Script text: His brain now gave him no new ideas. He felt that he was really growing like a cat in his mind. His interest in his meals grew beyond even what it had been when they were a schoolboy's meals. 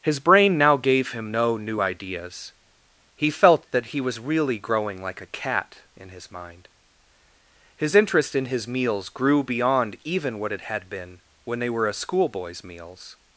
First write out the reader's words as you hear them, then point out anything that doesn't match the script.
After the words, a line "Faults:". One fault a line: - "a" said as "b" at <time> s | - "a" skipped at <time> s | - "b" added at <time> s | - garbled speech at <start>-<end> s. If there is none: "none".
His brain now gave him no new ideas. He felt that he was really growing like a cat in his mind. His interest in his meals grew beyond even what it had been when they were a schoolboy's meals.
Faults:
none